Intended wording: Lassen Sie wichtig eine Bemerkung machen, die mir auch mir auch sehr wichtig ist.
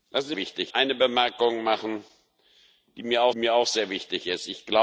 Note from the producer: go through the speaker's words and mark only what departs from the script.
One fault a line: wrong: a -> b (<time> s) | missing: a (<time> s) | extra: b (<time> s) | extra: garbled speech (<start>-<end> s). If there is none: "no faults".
no faults